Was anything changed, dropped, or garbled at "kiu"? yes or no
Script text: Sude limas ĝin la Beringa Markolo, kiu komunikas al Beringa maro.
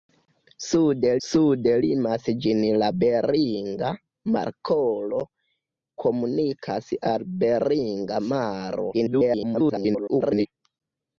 yes